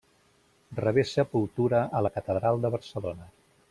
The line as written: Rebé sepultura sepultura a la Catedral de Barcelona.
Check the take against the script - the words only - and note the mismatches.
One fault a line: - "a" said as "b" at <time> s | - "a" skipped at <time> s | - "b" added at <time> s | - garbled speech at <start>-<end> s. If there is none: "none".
- "sepultura" skipped at 1.8 s